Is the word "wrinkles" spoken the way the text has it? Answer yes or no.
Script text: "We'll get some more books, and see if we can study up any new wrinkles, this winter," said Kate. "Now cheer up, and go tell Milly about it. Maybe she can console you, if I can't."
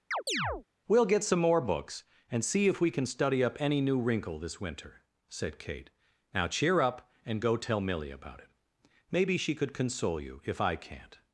no